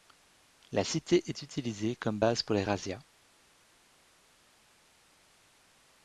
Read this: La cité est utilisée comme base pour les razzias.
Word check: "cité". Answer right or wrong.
right